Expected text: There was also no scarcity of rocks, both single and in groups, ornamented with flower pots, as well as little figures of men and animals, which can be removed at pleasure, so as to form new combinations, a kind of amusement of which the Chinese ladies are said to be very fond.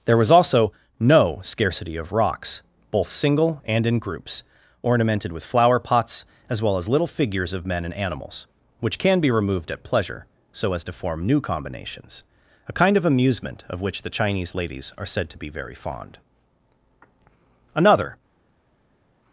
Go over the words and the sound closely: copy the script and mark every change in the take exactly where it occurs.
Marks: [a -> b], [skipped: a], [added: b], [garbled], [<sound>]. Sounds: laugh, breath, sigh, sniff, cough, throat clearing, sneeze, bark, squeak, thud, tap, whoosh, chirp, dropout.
There was also no scarcity of rocks, both single and in groups, ornamented with flower pots, as well as little figures of men and animals, which can be removed at pleasure, so as to form new combinations, a kind of amusement of which the Chinese ladies are said to be very fond. [added: Another]